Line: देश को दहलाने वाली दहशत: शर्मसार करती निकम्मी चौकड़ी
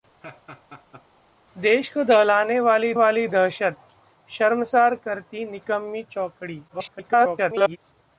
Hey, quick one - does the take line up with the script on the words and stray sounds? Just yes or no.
no